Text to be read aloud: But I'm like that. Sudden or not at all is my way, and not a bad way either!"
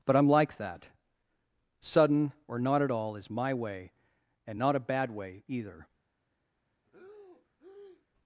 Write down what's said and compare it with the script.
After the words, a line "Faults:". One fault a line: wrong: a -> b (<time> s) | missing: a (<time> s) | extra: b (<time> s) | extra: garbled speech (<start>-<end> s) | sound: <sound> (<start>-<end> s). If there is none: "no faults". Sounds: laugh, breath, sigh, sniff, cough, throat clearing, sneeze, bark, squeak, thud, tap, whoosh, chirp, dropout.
But I'm like that. Sudden or not at all is my way, and not a bad way either!"
Faults:
sound: breath (6.8-8.1 s)